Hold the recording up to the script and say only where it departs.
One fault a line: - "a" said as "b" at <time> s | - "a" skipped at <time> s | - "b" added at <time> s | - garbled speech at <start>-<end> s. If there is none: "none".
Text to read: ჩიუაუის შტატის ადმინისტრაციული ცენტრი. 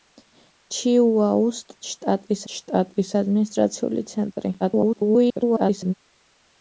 - "შტატის" added at 2.5 s
- garbled speech at 4.6-5.9 s